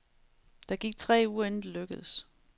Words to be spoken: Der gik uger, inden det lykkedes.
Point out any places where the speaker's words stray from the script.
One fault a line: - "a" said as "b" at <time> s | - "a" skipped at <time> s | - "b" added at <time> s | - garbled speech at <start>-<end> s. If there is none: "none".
- "tre" added at 1.0 s